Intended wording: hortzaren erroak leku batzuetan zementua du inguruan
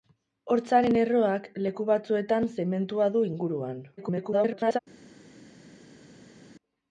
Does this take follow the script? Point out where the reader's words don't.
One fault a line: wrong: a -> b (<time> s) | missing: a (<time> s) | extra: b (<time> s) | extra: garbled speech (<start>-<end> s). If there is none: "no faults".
extra: garbled speech (4.0-4.8 s)